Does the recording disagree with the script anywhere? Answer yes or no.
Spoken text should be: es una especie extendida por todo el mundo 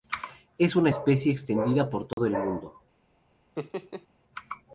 no